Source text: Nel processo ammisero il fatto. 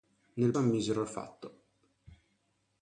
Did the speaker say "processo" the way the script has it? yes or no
no